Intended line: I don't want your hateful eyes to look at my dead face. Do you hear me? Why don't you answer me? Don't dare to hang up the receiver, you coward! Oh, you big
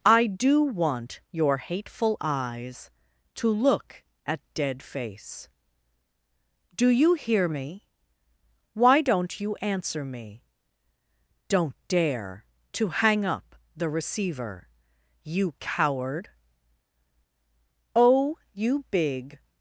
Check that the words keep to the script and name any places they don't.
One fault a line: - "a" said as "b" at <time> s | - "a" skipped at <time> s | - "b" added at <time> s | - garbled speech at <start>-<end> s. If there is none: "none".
- "don't" said as "do" at 0.2 s
- "my" skipped at 4.4 s